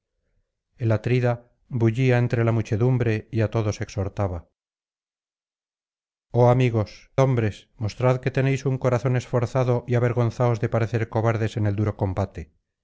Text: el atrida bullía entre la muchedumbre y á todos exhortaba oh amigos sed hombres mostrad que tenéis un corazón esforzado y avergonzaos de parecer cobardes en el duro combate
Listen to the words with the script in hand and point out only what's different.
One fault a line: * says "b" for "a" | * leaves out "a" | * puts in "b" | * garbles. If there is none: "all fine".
* leaves out "sed"